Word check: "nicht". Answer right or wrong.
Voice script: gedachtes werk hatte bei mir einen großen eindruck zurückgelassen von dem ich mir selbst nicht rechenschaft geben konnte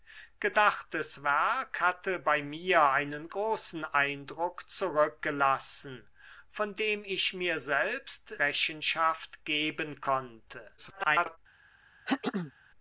wrong